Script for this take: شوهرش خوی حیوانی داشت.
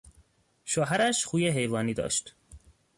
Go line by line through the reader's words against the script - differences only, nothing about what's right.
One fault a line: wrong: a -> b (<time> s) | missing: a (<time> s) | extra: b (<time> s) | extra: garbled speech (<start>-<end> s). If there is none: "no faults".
no faults